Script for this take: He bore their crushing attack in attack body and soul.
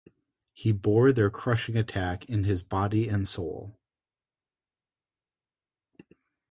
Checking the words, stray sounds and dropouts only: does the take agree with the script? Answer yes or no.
no